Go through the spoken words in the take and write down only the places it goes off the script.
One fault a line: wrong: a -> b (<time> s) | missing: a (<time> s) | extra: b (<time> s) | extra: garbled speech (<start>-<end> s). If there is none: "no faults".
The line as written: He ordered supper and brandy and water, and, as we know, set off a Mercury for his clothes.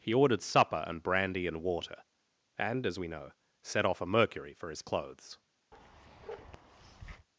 no faults